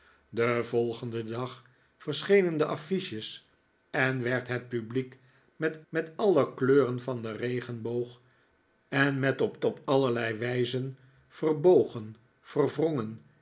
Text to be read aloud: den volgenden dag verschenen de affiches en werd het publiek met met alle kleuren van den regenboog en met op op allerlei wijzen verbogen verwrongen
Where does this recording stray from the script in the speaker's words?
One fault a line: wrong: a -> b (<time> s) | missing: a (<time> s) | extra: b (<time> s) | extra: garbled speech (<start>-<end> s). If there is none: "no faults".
no faults